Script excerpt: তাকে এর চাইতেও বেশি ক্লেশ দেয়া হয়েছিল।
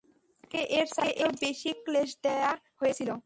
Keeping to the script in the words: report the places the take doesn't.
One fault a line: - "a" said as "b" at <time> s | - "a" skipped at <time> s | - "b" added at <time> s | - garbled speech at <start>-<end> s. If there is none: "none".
none